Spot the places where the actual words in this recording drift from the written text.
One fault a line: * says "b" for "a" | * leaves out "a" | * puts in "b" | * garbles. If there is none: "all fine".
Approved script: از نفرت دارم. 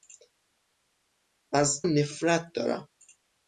all fine